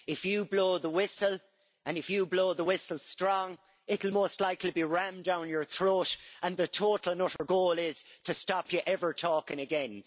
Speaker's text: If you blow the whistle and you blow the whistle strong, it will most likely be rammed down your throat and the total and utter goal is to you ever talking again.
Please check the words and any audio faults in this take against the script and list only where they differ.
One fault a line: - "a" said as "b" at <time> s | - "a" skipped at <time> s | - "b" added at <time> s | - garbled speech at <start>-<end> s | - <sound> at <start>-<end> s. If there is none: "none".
- "if" added at 2.0 s
- dropout at 7.4-7.4 s
- "stop" added at 8.3 s